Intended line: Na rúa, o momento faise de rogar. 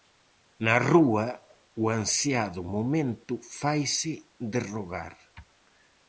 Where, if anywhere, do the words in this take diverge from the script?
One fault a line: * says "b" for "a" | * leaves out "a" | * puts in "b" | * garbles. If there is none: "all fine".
* puts in "ansiado"